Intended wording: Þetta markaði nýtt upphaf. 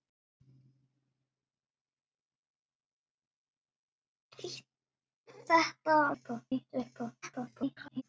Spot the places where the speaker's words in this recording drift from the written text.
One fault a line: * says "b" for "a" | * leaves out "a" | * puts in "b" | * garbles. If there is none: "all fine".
* says "upphaf" for "markaði"
* garbles